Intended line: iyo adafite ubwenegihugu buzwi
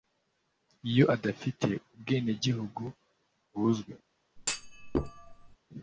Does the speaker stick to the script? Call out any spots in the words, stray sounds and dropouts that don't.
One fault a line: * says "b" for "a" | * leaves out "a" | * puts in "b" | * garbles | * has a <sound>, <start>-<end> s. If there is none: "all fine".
* has a thud, 4.4-5.6 s